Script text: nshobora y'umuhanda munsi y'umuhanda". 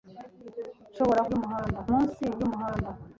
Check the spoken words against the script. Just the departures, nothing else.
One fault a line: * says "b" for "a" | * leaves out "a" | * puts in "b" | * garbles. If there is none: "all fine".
all fine